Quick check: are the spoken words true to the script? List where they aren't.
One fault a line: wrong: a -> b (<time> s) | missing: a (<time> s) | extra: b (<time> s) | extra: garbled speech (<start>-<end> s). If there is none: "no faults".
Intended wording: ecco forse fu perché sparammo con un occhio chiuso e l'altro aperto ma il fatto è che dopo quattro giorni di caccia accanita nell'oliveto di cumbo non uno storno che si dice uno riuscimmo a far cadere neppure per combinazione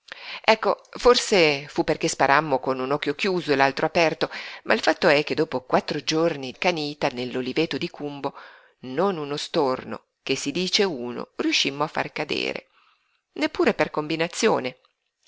missing: di caccia (6.5 s)